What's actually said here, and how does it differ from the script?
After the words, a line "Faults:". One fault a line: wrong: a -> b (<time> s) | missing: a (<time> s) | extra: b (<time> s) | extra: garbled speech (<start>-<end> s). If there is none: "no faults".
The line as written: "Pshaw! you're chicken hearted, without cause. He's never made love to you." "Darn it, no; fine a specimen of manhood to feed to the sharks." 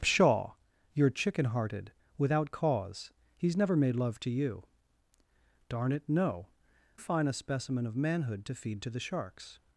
"Pshaw! you're chicken hearted, without cause. He's never made love to you." "Darn it, no; fine a specimen of manhood to feed to the sharks."
Faults:
no faults